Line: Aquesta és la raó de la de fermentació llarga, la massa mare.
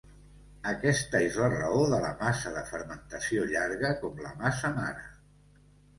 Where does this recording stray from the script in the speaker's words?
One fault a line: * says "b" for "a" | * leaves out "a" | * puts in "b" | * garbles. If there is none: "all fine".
* puts in "massa"
* puts in "com"